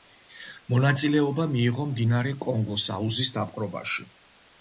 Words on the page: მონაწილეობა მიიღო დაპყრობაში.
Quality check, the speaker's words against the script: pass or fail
fail